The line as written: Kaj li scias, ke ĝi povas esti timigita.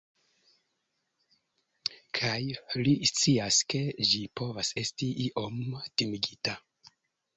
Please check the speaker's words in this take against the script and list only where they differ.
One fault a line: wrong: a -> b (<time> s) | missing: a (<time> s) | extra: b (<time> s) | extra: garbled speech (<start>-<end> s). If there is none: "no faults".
extra: iom (5.3 s)